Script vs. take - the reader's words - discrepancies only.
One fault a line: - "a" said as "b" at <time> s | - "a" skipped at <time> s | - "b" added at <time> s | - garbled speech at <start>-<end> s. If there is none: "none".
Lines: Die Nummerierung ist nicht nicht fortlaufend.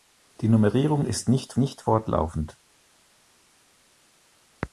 none